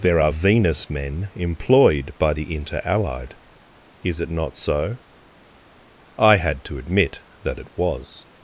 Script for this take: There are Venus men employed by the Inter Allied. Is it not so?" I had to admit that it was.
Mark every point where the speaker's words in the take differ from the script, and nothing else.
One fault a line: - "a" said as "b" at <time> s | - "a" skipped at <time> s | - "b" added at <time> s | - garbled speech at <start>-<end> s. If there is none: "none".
none